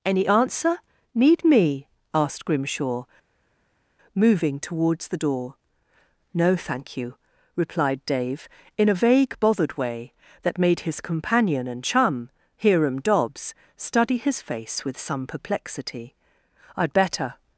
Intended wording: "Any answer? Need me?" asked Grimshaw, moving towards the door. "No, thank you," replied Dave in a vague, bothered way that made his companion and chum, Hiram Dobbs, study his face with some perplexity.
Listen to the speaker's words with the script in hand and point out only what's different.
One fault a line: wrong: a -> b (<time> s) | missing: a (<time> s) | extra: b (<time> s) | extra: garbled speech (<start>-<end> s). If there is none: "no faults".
extra: I'd better (16.8 s)